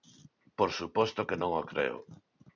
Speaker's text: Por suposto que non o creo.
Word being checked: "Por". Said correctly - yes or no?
yes